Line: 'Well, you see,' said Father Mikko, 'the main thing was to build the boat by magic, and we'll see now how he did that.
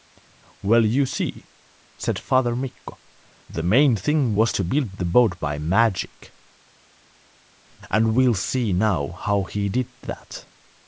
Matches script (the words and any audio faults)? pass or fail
pass